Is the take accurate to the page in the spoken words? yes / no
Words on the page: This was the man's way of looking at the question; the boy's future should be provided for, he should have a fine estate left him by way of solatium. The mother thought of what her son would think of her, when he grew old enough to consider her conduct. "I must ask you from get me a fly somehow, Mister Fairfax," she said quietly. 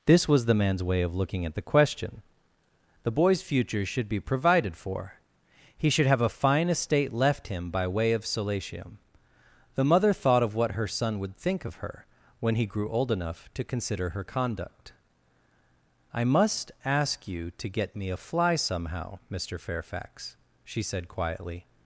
no